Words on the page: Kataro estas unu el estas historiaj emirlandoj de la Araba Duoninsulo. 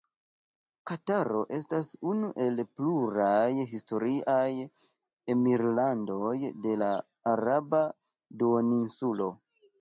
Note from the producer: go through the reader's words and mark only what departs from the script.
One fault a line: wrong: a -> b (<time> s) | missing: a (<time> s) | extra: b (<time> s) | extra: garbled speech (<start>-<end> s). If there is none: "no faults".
wrong: estas -> pluraj (2.8 s)